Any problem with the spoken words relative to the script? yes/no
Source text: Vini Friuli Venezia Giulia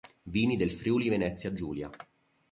yes